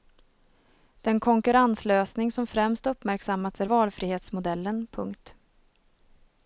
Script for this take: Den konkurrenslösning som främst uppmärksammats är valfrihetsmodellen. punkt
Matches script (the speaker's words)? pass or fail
pass